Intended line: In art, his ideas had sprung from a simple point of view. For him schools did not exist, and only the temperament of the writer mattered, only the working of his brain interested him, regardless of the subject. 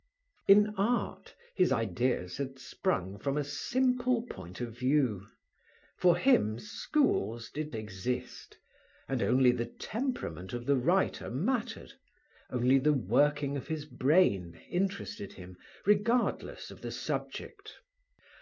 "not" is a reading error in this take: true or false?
true